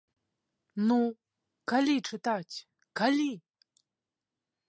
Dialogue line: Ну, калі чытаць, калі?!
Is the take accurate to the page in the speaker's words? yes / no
yes